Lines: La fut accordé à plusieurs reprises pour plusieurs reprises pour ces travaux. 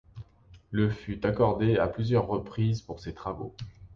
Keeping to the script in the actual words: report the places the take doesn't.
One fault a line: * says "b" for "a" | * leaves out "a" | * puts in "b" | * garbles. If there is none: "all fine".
* says "Le" for "La"
* leaves out "plusieurs reprises pour"